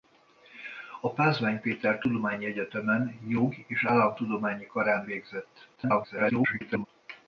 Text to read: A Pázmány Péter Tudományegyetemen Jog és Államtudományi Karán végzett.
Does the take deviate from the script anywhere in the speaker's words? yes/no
yes